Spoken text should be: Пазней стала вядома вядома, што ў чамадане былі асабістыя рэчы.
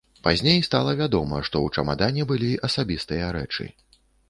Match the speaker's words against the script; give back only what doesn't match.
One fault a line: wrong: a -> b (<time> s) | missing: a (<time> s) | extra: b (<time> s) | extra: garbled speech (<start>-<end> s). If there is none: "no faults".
missing: вядома (1.4 s)